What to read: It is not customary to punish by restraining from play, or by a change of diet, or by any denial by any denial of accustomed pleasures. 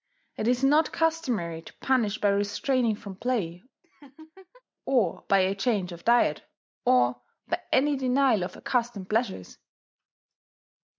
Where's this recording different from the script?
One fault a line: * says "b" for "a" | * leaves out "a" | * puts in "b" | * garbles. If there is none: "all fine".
* leaves out "by any denial"